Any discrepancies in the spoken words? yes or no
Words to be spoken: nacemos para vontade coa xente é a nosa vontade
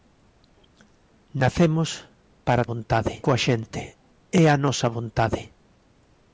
no